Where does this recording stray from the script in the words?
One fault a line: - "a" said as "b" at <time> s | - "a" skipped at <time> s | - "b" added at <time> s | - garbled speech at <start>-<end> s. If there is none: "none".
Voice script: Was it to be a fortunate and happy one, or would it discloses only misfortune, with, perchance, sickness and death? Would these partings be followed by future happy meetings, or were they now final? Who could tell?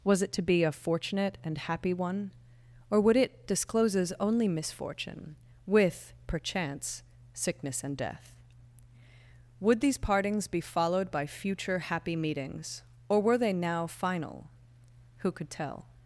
none